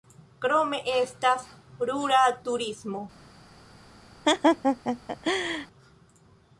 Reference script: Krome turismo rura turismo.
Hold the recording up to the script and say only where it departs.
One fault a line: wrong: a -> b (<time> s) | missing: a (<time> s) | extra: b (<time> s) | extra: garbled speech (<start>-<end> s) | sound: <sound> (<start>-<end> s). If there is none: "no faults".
wrong: turismo -> estas (0.9 s)
sound: laugh (4.2-5.7 s)